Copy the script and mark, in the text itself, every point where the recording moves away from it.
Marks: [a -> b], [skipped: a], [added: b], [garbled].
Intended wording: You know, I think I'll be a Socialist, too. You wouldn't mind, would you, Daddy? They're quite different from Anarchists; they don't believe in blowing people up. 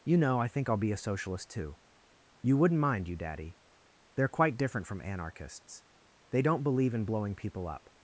You know, I think I'll be a Socialist, too. You wouldn't mind, [skipped: would] you, Daddy? They're quite different from Anarchists; they don't believe in blowing people up.